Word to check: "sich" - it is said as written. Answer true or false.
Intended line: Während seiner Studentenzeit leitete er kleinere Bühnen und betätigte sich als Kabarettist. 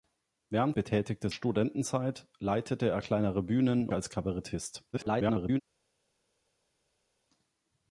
false